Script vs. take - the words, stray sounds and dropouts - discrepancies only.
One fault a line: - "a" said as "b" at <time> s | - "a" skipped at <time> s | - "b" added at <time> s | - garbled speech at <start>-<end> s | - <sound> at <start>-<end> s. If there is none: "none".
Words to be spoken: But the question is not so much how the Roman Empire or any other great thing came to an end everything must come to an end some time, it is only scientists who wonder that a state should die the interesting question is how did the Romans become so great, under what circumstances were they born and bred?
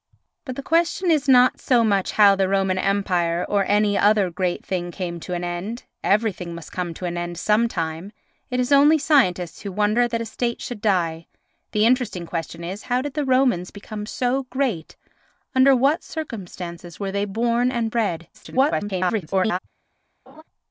- garbled speech at 18.3-19.6 s
- laugh at 20.3-20.4 s